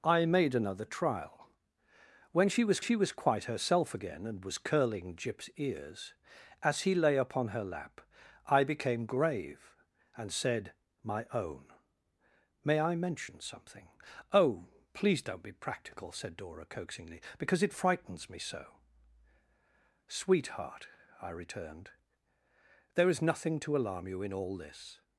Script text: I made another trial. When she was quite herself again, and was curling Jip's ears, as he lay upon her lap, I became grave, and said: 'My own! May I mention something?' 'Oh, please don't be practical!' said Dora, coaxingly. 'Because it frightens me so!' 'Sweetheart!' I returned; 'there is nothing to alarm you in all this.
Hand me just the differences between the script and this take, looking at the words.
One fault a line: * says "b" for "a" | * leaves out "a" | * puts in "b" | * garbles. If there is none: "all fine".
* puts in "she was"